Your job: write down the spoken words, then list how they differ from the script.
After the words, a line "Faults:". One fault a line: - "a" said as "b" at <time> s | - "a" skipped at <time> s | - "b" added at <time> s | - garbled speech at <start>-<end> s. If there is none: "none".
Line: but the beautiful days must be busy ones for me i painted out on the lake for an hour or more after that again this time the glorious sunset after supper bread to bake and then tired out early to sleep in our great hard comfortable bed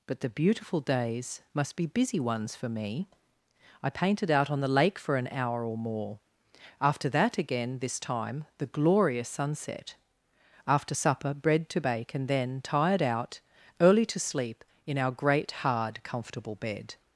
but the beautiful days must be busy ones for me i painted out on the lake for an hour or more after that again this time the glorious sunset after supper bread to bake and then tired out early to sleep in our great hard comfortable bed
Faults:
none